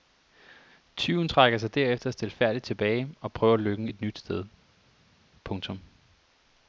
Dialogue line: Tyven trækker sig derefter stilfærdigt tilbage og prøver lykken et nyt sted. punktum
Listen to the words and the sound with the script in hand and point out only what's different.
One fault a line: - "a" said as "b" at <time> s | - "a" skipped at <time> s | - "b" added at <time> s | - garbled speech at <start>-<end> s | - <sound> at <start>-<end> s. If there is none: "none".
none